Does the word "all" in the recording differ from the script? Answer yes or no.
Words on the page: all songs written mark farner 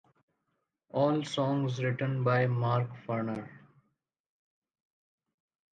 no